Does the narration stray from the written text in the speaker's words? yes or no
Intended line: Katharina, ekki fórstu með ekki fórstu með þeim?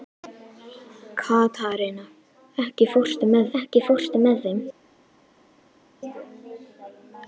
no